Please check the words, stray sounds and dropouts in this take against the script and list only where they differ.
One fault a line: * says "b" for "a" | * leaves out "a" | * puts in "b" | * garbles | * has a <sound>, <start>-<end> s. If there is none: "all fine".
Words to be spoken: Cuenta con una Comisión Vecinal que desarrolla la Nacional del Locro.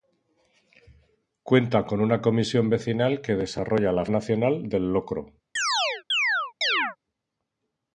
* has a chirp, 5.6-7.0 s